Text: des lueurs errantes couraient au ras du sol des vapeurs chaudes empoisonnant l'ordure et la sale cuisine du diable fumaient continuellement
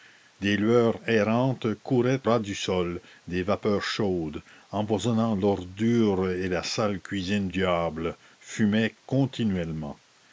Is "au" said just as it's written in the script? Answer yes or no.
no